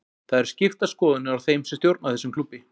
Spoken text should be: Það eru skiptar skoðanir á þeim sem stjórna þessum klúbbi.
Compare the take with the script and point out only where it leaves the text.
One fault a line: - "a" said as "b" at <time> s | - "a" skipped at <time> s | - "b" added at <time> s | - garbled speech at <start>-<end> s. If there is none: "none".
none